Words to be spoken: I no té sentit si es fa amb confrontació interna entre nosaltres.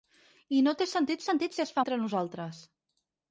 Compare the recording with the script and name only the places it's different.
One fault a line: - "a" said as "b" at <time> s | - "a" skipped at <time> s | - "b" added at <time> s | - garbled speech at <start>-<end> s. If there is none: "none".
- "sentit" added at 1.3 s
- "amb confrontació interna" skipped at 1.8 s